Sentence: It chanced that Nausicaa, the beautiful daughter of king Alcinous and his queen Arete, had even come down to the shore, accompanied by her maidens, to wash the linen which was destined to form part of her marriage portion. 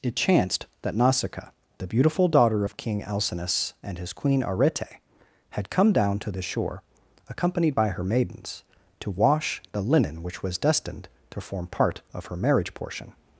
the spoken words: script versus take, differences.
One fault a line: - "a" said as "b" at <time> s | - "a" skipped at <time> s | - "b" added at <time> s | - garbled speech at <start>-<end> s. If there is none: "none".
- "even" skipped at 5.7 s